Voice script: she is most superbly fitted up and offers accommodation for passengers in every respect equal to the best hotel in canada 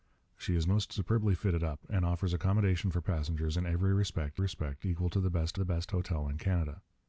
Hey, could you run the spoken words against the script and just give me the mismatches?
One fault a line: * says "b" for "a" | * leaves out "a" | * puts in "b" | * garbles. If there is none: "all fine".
* puts in "respect"
* puts in "the best"